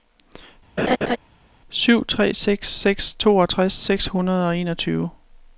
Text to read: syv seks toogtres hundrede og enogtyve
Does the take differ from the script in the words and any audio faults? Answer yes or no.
yes